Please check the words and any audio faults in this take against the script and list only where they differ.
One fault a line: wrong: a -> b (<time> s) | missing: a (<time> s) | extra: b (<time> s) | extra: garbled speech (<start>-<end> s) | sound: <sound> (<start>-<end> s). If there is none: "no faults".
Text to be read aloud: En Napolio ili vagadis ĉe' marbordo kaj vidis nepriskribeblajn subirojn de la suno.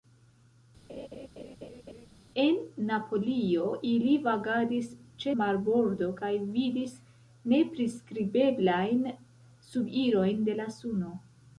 sound: laugh (0.9-2.1 s)